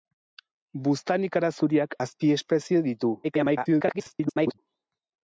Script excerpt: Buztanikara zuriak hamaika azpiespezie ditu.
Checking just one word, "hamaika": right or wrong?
wrong